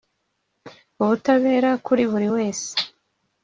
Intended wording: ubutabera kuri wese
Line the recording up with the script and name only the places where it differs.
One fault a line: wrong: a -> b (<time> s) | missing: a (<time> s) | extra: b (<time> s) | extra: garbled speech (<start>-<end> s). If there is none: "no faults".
extra: buri (2.1 s)